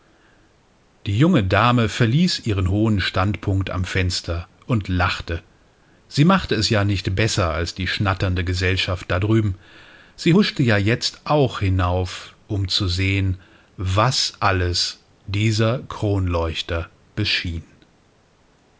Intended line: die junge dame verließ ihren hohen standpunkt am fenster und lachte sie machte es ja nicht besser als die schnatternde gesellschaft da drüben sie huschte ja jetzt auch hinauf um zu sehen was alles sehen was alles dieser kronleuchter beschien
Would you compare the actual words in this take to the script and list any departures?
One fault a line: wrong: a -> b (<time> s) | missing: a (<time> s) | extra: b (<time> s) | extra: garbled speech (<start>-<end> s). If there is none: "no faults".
missing: sehen was alles (15.0 s)